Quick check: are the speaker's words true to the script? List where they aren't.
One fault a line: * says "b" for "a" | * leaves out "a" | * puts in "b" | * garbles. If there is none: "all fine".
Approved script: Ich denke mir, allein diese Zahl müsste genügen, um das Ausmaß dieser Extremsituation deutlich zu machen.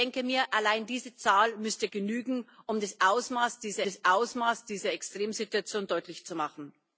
* puts in "das Ausmaß dieser"